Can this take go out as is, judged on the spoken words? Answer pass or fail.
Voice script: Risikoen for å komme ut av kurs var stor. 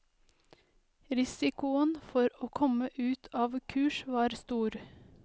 pass